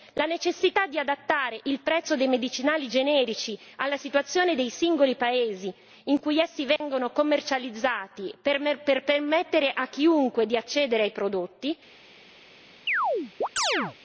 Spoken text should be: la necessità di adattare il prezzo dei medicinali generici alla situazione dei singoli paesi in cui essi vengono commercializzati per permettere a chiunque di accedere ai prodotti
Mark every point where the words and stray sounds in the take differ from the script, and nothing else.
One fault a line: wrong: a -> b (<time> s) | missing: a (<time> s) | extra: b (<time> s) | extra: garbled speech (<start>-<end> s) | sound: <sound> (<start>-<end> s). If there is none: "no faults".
sound: dropout (6.8-6.8 s)
sound: chirp (12.9-14.0 s)